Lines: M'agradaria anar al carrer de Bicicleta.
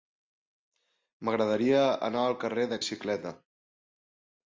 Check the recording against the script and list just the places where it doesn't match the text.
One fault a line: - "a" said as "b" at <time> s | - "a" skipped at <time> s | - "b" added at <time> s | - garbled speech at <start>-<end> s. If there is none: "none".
none